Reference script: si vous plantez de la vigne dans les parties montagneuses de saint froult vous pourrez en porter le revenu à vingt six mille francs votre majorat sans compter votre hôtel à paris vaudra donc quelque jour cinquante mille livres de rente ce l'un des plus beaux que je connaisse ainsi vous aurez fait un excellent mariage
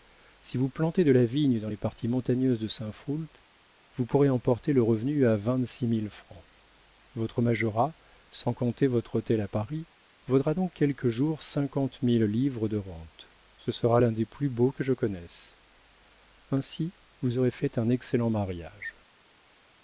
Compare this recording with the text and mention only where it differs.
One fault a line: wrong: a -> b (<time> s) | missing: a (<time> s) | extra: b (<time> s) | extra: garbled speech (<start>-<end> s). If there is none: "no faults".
extra: sera (13.7 s)